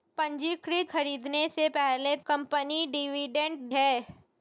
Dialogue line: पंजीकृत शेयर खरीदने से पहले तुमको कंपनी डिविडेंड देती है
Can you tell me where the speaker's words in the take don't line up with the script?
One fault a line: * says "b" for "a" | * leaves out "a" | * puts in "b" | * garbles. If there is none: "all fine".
* leaves out "शेयर"
* leaves out "तुमको"
* leaves out "देती"